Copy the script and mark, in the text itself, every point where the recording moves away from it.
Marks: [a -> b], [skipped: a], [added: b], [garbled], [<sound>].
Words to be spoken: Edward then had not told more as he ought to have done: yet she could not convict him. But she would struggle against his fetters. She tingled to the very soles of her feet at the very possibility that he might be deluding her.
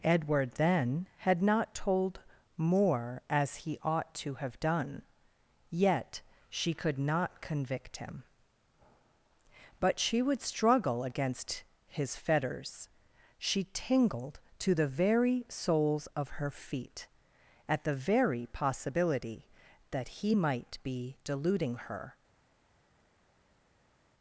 Edward then had not told more as he ought to have done: yet she could not convict him. But she would struggle against his fetters. She tingled to the very soles of her feet at the very possibility that he might be deluding her.